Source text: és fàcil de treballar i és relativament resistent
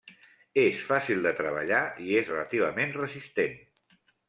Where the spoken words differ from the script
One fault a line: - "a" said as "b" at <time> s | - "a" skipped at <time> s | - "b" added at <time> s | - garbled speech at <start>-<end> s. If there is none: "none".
none